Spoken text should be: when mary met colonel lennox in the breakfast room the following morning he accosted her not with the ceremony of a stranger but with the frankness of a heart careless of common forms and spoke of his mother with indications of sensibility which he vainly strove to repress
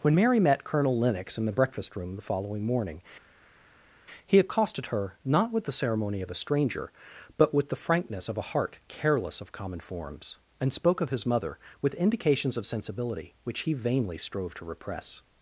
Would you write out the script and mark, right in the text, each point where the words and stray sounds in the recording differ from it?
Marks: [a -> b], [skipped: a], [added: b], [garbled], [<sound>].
when mary met colonel lennox in the breakfast room the following morning he accosted her not with the ceremony of a stranger but with the frankness of a heart careless of common forms and spoke of his mother with indications of sensibility which he vainly strove to repress